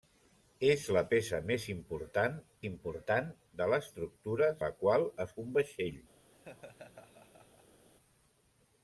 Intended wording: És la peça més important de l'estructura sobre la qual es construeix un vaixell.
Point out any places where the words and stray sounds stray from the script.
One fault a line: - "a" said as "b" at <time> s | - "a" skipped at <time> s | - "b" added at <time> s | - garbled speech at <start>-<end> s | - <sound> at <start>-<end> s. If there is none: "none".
- "important" added at 2.7 s
- "sobre" skipped at 4.5 s
- "construeix" skipped at 5.4 s
- laugh at 6.3-7.8 s